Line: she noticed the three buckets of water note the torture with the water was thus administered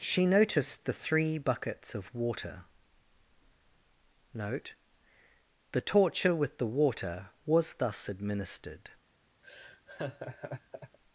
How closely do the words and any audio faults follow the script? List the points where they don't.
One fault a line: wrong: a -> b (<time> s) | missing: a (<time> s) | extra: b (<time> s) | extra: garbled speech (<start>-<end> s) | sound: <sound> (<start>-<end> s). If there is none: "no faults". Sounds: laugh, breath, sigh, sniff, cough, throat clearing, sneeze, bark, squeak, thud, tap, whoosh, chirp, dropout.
sound: laugh (9.4-11.0 s)